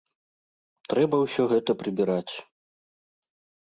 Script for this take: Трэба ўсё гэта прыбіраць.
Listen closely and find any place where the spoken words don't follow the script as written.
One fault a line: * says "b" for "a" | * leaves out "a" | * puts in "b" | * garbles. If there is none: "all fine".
all fine